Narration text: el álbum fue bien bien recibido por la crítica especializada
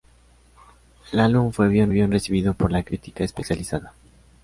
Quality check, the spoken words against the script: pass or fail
pass